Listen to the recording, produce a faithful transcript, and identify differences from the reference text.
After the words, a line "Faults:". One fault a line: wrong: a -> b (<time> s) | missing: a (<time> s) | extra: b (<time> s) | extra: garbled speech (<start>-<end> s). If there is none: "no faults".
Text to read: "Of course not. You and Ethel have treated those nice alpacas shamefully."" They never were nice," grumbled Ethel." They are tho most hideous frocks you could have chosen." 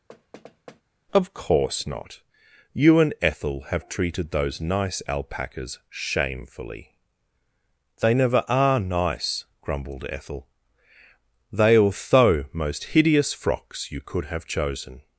"Of course not. You and Ethel have treated those nice alpacas shamefully."" They never are nice," grumbled Ethel." They are tho most hideous frocks you could have chosen."
Faults:
wrong: were -> are (8.5 s)